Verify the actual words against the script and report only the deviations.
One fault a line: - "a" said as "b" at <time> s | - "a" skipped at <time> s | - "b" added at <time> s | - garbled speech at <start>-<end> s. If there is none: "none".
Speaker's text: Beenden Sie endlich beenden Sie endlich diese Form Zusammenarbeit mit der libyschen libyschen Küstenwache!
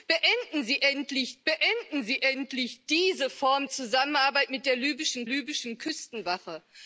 none